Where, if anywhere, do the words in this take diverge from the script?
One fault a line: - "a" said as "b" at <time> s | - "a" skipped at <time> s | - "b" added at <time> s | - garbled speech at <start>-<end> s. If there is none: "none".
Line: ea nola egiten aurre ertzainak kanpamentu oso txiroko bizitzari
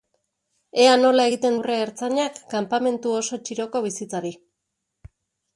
none